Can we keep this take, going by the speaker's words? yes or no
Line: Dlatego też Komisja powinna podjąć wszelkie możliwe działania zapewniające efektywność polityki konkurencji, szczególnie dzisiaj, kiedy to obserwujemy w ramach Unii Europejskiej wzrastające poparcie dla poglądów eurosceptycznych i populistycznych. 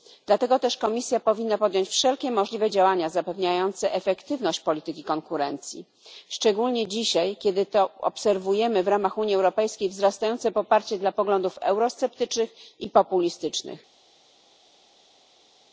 yes